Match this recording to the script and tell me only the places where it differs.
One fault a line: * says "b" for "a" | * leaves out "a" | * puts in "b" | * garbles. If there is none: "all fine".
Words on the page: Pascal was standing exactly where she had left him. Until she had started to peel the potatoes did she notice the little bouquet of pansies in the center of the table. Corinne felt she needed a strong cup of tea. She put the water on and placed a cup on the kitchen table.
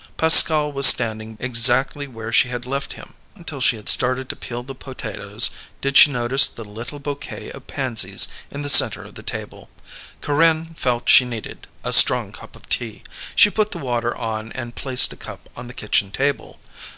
all fine